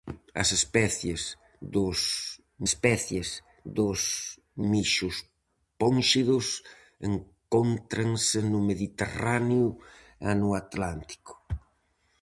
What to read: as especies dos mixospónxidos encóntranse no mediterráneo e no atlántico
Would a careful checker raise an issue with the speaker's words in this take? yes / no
yes